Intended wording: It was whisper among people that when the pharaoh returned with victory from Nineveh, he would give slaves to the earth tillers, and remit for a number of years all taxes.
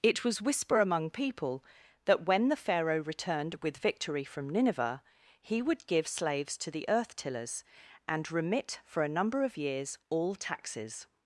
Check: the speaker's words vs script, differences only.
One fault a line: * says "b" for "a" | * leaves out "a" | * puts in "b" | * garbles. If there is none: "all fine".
all fine